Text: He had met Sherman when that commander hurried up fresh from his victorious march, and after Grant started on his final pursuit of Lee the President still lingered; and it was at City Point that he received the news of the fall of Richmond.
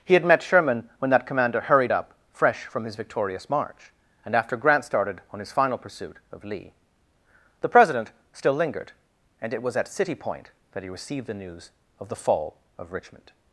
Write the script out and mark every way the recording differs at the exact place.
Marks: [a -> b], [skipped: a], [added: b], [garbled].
He had met Sherman when that commander hurried up fresh from his victorious march, and after Grant started on his final pursuit of Lee the President still lingered; and it was at City Point that he received the news of the fall of Richmond.